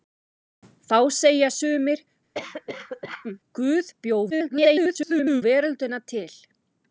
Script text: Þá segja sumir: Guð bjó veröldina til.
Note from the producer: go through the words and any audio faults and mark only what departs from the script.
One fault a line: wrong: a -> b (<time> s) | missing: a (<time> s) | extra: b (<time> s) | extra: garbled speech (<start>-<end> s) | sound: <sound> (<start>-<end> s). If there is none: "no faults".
sound: cough (2.3-3.4 s)
extra: garbled speech (4.3-5.4 s)